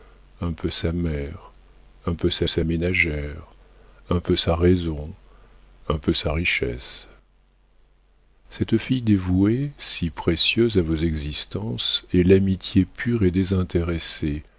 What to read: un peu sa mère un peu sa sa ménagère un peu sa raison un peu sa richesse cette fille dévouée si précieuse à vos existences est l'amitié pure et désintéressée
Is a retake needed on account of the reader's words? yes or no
no